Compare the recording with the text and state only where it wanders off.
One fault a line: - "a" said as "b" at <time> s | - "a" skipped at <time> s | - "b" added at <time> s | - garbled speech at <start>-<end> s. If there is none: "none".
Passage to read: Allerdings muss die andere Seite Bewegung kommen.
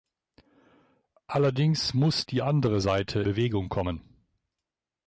none